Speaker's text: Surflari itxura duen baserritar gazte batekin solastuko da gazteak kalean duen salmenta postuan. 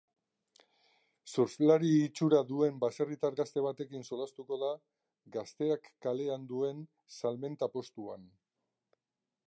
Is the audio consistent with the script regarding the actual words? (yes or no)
yes